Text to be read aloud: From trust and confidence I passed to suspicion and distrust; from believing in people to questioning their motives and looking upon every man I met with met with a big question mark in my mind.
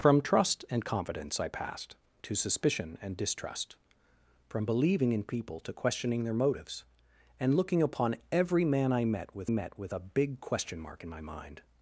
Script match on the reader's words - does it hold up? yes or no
yes